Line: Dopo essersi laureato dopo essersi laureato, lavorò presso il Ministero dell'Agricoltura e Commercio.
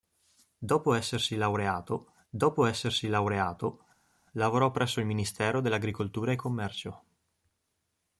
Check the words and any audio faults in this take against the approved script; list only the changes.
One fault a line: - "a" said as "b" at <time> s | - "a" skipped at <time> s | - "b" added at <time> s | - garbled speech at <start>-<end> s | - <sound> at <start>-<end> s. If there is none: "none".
none